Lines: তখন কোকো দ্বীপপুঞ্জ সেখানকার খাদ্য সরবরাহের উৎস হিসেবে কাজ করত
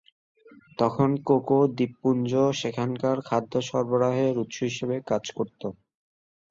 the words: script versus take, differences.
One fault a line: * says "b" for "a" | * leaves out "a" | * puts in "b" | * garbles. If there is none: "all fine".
all fine